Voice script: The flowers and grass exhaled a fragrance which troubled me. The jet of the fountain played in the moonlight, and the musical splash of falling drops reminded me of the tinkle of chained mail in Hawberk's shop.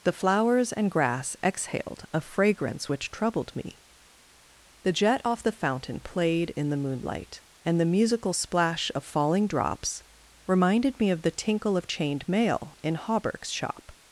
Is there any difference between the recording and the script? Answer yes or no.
yes